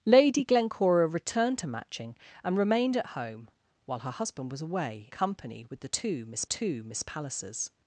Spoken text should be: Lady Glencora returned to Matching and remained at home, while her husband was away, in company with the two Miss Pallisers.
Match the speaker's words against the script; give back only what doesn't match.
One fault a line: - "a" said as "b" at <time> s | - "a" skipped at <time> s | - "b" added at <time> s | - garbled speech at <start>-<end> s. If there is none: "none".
- "in" skipped at 5.1 s
- "two Miss" added at 6.4 s